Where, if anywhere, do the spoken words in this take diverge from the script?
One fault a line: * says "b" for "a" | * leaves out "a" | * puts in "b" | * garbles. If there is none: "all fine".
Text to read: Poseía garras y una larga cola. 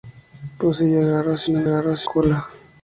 * says "garras" for "larga"